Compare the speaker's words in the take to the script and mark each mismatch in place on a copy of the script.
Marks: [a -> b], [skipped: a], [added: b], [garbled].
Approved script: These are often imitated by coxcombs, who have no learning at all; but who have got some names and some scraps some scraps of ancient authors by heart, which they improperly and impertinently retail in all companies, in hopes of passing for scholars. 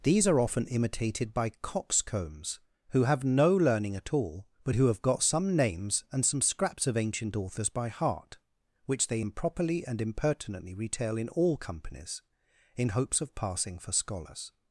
These are often imitated by coxcombs, who have no learning at all; but who have got some names and some scraps [skipped: some scraps] of ancient authors by heart, which they improperly and impertinently retail in all companies, in hopes of passing for scholars.